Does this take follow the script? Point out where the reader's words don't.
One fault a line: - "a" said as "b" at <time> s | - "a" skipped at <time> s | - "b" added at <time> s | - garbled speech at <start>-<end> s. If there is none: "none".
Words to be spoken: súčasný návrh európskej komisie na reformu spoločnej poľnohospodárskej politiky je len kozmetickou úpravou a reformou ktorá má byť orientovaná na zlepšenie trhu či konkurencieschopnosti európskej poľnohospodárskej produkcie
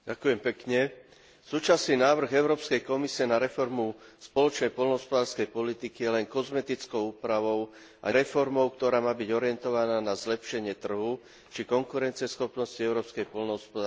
none